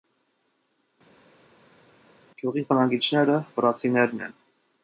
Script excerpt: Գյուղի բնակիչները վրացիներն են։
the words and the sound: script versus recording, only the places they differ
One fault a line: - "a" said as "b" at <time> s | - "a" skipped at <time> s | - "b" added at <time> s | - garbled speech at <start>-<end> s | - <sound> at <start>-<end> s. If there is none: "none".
none